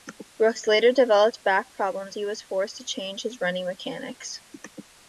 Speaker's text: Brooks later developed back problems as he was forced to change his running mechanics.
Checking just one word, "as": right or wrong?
wrong